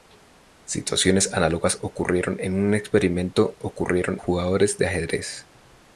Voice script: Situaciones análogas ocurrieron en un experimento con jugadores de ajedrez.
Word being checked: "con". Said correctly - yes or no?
no